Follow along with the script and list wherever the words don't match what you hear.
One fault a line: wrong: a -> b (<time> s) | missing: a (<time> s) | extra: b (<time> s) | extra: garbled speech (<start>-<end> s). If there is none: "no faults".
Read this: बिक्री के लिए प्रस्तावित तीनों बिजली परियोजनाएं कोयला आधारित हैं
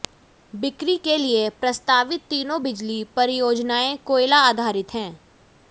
no faults